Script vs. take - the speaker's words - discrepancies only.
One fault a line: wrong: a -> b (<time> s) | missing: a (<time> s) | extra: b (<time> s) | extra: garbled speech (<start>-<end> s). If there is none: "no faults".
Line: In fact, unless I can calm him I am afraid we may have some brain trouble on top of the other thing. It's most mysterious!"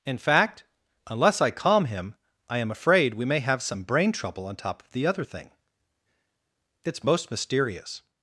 missing: can (1.5 s)